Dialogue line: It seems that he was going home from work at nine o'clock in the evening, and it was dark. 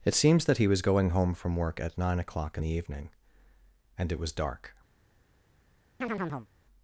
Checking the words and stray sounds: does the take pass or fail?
fail